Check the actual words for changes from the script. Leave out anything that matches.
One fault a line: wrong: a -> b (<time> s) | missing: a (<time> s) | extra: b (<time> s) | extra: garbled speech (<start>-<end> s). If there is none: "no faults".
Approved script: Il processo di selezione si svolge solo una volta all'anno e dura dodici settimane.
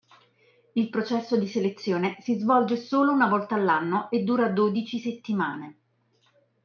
no faults